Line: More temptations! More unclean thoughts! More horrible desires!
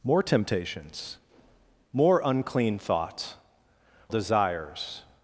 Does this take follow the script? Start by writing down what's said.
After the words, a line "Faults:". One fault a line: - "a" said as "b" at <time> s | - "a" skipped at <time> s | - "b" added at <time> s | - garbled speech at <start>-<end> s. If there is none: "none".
More temptations! More unclean thoughts! Desires!
Faults:
- "More horrible" skipped at 3.4 s